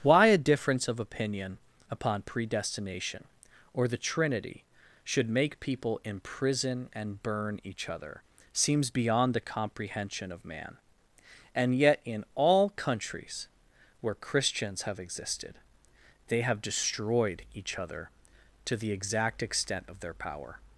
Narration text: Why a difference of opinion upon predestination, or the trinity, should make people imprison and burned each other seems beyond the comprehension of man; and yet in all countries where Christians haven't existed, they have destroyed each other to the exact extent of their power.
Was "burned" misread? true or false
true